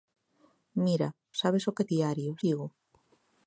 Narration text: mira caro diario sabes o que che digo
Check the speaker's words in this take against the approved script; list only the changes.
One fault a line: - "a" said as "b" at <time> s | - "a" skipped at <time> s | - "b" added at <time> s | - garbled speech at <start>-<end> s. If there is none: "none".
- "caro diario" skipped at 1.1 s
- "che" said as "diario" at 1.9 s